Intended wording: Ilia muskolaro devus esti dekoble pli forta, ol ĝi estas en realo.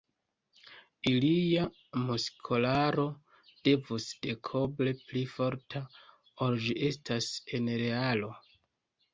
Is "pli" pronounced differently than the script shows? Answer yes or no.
no